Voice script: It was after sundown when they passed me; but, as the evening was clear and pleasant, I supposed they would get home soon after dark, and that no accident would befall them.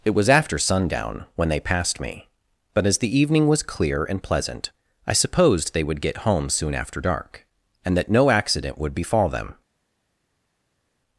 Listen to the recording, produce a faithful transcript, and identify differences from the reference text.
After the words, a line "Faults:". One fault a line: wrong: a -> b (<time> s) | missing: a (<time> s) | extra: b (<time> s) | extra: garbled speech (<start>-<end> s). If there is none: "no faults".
It was after sundown when they passed me; but, as the evening was clear and pleasant, I supposed they would get home soon after dark, and that no accident would befall them.
Faults:
no faults